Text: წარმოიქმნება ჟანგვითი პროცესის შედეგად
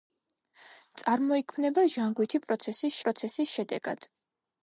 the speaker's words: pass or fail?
fail